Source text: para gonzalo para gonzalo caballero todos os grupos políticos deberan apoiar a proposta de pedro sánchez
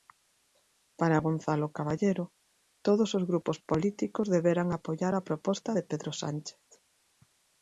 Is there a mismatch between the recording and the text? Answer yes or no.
yes